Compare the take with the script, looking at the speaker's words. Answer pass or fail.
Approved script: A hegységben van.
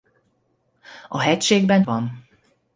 pass